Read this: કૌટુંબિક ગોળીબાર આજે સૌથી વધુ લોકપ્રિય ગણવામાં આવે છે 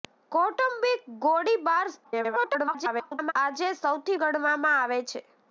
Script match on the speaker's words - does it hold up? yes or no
no